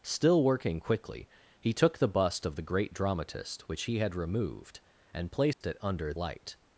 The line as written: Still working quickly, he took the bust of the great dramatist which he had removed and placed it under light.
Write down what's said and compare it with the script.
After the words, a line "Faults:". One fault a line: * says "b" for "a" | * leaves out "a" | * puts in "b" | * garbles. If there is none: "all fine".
Still working quickly, he took the bust of the great dramatist which he had removed and placed it under light.
Faults:
all fine